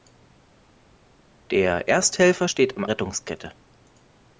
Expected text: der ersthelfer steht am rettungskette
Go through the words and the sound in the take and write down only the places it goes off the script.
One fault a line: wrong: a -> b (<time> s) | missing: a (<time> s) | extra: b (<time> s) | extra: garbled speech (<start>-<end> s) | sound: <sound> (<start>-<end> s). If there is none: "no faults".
no faults